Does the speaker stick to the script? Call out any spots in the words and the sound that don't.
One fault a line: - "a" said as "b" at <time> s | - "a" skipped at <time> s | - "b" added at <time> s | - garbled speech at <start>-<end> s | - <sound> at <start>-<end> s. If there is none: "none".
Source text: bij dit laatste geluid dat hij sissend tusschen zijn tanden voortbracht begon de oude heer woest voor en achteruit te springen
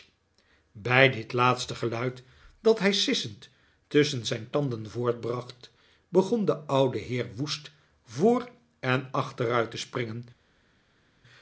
none